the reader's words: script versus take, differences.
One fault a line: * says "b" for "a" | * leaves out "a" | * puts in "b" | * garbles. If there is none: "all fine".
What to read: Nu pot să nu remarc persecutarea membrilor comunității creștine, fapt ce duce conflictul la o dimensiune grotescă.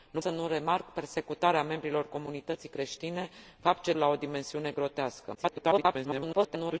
* leaves out "pot"
* leaves out "duce conflictul"
* garbles